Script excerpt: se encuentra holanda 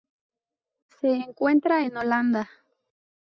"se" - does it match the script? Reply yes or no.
yes